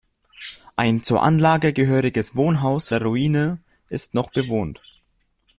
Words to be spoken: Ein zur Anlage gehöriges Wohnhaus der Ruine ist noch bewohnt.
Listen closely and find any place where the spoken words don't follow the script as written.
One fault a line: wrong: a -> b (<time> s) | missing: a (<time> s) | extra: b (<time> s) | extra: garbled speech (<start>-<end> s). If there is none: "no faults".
no faults